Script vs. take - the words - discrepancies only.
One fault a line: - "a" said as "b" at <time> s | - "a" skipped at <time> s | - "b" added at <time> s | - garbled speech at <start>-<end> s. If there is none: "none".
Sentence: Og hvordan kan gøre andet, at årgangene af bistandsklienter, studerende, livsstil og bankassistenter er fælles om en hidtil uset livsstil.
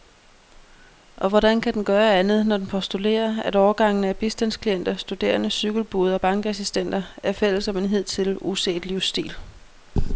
- "den" added at 1.7 s
- "når den postulerer" added at 2.5 s
- "livsstil" said as "cykelbude" at 5.5 s